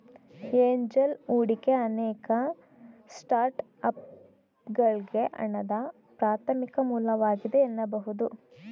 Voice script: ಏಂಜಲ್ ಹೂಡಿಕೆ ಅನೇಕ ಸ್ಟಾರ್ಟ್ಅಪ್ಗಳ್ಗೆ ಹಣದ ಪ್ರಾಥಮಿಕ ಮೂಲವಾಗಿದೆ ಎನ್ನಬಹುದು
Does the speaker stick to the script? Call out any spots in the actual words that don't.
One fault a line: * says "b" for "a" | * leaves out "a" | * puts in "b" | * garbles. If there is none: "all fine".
all fine